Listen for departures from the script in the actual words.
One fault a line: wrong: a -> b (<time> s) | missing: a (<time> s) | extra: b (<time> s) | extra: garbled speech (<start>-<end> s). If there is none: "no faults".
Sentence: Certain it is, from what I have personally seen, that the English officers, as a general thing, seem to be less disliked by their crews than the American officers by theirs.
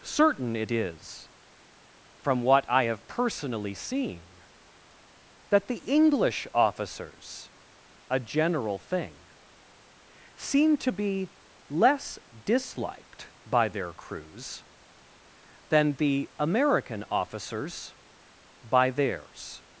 missing: as (7.5 s)